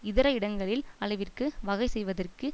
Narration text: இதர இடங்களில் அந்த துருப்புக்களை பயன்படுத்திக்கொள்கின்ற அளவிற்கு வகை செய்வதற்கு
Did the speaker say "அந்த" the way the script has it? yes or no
no